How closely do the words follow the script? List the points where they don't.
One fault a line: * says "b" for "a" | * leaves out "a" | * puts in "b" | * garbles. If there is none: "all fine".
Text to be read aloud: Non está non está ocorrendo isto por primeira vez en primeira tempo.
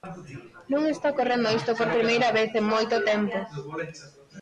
* leaves out "non está"
* says "moito" for "primeira"